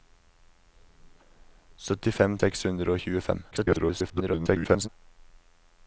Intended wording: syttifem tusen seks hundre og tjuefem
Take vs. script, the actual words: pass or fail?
fail